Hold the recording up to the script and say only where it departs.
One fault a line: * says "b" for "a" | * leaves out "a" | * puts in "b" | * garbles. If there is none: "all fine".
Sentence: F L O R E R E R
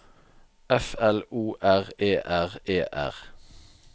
all fine